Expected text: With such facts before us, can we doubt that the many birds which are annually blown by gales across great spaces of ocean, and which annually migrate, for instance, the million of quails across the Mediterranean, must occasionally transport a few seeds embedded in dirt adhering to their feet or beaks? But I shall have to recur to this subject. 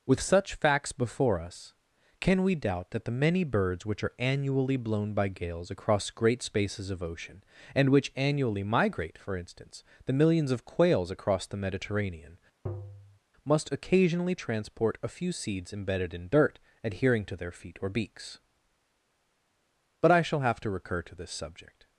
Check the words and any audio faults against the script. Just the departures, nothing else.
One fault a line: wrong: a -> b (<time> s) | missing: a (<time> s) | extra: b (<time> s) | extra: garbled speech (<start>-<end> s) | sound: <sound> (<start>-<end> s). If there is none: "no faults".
wrong: million -> millions (10.1 s)
sound: tap (12.7-13.2 s)